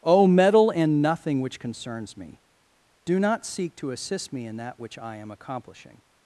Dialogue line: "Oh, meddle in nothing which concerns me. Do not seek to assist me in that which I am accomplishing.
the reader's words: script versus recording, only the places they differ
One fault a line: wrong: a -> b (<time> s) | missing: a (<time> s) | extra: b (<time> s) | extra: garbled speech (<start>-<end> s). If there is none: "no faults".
no faults